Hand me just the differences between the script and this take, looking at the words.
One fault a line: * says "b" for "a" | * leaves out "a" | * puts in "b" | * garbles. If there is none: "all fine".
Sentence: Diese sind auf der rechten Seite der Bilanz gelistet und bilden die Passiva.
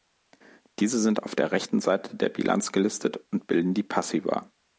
all fine